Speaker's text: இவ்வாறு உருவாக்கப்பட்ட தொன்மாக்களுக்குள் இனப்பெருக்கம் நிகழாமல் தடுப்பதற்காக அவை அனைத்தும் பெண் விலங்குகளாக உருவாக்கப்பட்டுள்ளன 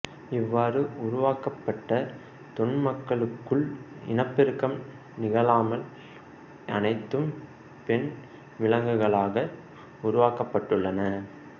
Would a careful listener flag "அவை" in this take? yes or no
yes